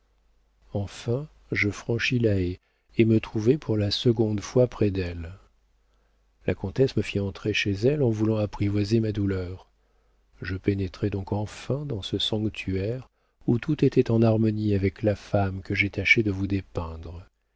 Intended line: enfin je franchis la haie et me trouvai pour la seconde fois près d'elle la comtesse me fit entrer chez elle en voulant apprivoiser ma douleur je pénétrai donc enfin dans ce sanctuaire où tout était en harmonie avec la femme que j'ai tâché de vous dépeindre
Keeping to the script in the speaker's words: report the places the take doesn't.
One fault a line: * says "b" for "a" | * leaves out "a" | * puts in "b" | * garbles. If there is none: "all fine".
all fine